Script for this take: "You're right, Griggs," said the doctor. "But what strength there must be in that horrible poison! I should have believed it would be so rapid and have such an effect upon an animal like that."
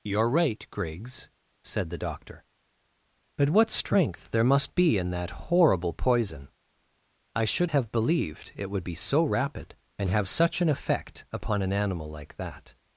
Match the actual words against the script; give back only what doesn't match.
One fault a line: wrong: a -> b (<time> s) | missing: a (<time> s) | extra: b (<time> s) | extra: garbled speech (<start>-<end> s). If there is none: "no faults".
no faults